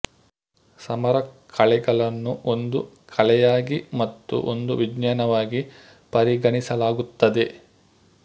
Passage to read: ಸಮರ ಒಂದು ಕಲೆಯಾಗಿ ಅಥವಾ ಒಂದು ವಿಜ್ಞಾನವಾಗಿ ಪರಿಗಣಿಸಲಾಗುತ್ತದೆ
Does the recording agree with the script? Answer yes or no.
no